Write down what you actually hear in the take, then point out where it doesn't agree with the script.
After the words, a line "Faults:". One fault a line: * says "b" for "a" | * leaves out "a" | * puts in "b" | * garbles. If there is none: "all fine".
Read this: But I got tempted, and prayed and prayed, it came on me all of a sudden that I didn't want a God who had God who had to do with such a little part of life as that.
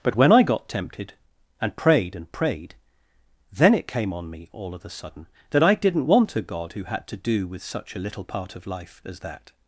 But when I got tempted, and prayed and prayed, then it came on me all of a sudden that I didn't want a God who had to do with such a little part of life as that.
Faults:
* puts in "when"
* puts in "then"
* leaves out "God who had"